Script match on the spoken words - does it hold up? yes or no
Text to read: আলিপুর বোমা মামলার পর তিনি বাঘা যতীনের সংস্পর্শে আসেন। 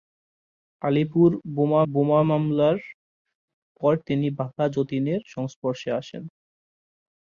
no